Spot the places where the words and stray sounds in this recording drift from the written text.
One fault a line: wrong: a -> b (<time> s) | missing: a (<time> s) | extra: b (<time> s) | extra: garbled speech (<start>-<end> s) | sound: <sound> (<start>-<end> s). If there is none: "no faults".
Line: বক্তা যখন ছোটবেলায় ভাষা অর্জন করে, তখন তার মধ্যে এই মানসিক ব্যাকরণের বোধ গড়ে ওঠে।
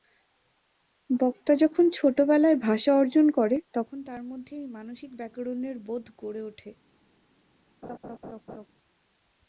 sound: laugh (7.8-8.7 s)